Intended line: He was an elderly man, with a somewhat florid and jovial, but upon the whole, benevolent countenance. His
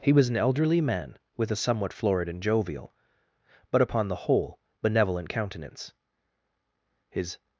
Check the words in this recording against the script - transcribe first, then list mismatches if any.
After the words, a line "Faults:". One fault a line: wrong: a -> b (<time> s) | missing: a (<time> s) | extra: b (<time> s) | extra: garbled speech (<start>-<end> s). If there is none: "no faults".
He was an elderly man, with a somewhat florid and jovial, but upon the whole, benevolent countenance. His
Faults:
no faults